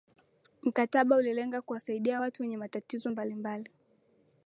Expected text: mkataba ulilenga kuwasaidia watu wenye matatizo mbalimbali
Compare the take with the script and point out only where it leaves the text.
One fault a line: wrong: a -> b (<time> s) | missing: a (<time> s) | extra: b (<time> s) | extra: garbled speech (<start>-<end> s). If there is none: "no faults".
no faults